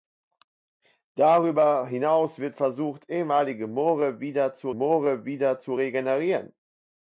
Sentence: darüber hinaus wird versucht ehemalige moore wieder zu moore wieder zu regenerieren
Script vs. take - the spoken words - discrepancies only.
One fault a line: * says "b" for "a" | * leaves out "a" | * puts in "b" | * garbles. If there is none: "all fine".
all fine